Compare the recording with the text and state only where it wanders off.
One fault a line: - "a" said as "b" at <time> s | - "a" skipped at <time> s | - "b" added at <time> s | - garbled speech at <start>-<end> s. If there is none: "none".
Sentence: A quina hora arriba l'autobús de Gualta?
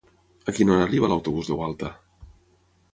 none